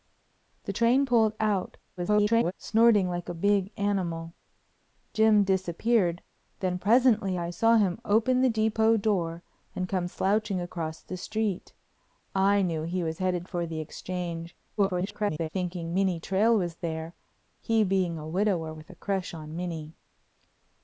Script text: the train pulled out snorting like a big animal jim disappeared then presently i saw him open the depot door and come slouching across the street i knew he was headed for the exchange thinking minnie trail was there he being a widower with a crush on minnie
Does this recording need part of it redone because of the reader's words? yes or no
yes